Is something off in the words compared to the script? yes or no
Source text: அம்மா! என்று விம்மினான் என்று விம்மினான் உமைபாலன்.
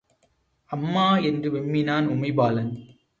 yes